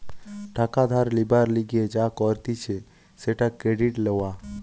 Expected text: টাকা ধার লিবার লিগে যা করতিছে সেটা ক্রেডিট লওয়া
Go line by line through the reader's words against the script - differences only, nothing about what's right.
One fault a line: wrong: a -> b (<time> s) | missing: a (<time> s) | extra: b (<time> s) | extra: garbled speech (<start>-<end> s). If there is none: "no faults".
no faults